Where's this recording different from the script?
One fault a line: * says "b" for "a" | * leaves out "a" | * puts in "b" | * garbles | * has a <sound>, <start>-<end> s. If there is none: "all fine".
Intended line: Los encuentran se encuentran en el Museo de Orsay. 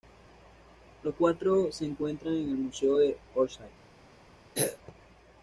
* says "cuatro" for "encuentran"
* has a throat clearing, 4.6-4.8 s